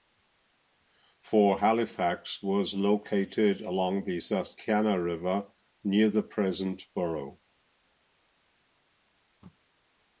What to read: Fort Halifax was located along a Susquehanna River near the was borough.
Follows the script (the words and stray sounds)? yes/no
no